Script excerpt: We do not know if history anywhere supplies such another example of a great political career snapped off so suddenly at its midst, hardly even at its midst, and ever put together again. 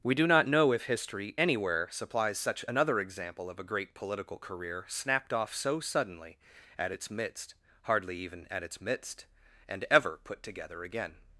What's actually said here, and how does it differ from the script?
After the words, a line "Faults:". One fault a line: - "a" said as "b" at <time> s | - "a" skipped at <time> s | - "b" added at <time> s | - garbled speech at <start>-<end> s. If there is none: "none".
We do not know if history anywhere supplies such another example of a great political career snapped off so suddenly at its midst, hardly even at its midst, and ever put together again.
Faults:
none